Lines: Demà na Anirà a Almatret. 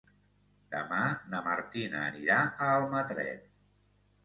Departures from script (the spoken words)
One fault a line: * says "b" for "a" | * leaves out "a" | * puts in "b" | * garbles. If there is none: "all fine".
* puts in "Martina"